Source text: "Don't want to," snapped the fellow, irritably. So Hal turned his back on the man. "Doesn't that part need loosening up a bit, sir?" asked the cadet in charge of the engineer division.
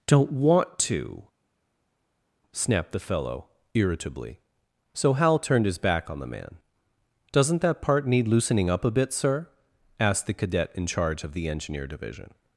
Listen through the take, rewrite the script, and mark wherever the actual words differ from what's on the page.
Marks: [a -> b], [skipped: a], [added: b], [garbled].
"Don't want to," snapped the fellow, irritably. So Hal turned his back on the man. "Doesn't that part need loosening up a bit, sir?" asked the cadet in charge of the engineer division.